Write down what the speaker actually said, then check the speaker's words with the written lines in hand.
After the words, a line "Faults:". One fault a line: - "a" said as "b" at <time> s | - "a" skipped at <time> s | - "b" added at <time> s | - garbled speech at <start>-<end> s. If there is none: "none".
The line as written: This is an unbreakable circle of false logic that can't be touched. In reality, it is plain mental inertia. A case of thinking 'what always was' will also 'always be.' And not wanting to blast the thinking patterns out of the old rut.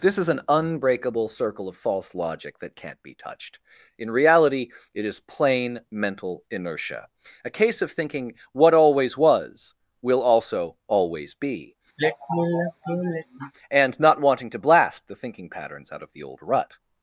This is an unbreakable circle of false logic that can't be touched. In reality, it is plain mental inertia. A case of thinking 'what always was' will also 'always be.' And not wanting to blast the thinking patterns out of the old rut.
Faults:
none